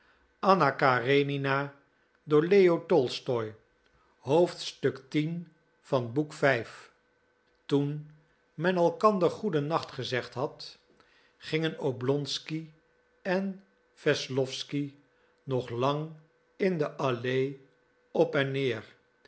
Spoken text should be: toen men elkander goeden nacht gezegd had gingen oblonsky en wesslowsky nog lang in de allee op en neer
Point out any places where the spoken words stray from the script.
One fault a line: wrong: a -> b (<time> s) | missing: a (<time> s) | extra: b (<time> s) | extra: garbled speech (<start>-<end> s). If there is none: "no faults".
no faults